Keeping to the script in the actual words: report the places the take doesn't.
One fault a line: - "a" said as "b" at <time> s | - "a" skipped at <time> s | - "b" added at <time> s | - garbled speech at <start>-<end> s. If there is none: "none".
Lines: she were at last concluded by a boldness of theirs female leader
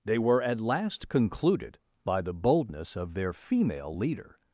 - "she" said as "they" at 0.0 s
- "a" said as "the" at 2.2 s
- "theirs" said as "their" at 3.1 s